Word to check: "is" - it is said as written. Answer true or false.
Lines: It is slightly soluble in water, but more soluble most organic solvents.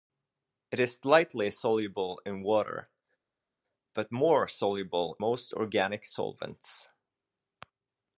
true